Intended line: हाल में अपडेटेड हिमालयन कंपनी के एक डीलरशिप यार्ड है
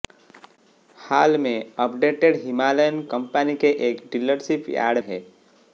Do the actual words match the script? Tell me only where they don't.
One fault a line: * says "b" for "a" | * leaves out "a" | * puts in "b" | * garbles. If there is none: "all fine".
all fine